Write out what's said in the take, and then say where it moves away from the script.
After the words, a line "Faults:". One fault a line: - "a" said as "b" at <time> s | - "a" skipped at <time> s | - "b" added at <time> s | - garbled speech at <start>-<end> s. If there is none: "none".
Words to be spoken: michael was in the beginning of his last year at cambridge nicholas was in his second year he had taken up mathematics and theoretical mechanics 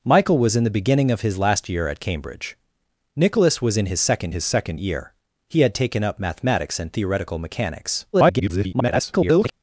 michael was in the beginning of his last year at cambridge nicholas was in his second his second year he had taken up mathematics and theoretical mechanics [garbled]
Faults:
- "his second" added at 4.3 s
- garbled speech at 8.1-9.5 s